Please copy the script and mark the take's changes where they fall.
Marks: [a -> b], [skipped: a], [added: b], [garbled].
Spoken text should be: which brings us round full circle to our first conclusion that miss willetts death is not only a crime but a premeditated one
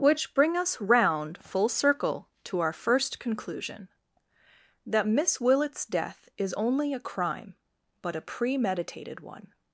which [brings -> bring] us round full circle to our first conclusion that miss willetts death is [skipped: not] only a crime but a premeditated one